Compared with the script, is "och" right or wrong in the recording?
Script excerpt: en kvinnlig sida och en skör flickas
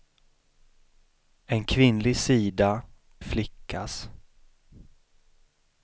wrong